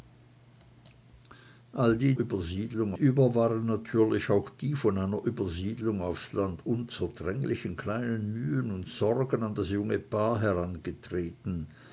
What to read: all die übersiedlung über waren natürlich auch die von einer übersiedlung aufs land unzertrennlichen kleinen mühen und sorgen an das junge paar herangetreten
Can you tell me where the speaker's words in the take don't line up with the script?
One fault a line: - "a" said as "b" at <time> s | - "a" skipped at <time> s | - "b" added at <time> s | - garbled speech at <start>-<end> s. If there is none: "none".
none